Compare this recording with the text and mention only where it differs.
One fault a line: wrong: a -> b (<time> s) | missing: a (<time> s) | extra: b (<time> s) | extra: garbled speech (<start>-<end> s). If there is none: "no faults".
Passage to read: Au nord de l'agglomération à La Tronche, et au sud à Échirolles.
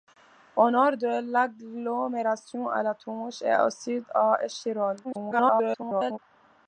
extra: garbled speech (5.0-6.2 s)